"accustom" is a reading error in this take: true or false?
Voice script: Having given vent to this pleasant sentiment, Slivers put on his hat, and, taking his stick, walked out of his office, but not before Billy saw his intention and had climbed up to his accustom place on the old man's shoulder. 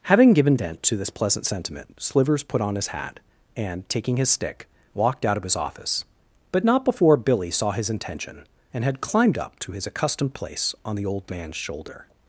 true